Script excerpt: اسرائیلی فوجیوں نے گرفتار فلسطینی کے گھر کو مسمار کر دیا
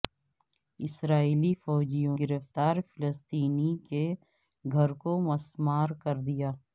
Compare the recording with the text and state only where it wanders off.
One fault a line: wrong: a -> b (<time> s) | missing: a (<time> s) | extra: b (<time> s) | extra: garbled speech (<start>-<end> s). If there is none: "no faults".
missing: نے (2.2 s)